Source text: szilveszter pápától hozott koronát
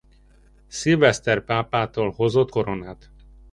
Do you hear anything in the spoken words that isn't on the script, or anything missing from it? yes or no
no